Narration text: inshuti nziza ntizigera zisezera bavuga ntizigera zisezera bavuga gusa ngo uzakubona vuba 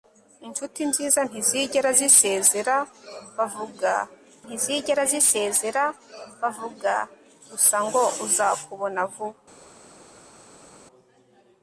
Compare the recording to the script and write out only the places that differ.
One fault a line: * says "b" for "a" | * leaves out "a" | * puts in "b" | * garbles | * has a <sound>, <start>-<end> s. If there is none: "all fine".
all fine